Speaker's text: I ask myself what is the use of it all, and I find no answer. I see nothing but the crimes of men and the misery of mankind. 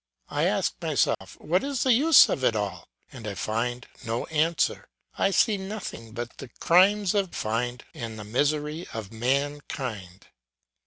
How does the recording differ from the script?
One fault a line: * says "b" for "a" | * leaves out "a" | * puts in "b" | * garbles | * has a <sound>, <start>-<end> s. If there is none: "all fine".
* has a dropout, 1.1-1.2 s
* says "find" for "men"